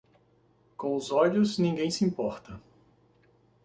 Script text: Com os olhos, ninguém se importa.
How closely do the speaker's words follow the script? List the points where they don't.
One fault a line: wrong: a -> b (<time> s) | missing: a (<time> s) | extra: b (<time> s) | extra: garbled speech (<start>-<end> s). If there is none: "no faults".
no faults